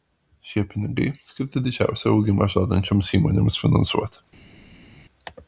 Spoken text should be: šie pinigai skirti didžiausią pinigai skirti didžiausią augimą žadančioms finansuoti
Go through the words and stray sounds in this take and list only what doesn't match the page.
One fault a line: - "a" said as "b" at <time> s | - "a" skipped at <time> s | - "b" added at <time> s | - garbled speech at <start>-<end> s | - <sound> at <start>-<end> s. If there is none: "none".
- "pinigai skirti didžiausią" skipped at 2.1 s
- "įmonėms" added at 3.2 s